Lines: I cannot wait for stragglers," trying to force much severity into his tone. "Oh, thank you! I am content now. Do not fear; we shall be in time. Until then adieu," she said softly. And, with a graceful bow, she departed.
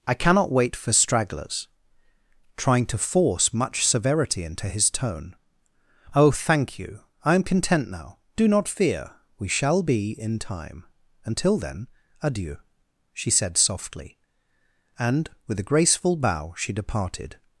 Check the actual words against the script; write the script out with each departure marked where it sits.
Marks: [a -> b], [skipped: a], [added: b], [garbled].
I cannot wait for stragglers," trying to force much severity into his tone. "Oh, thank you! I am content now. Do not fear; we shall be in time. Until then adieu," she said softly. And, with a graceful bow, she departed.